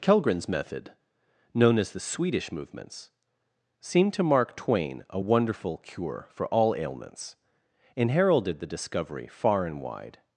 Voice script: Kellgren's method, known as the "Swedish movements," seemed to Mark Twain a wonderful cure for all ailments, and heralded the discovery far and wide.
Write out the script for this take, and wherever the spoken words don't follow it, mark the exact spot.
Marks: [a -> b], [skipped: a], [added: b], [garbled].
Kellgren's method, known as the "Swedish movements," seemed to Mark Twain a wonderful cure for all ailments, and heralded the discovery far and wide.